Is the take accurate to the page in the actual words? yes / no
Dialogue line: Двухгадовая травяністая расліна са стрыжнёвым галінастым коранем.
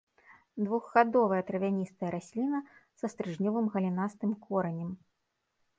yes